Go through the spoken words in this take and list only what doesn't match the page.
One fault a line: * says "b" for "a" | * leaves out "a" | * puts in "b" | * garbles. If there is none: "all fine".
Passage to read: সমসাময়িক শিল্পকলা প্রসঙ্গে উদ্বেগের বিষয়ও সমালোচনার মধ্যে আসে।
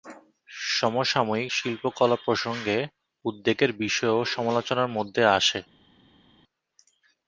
all fine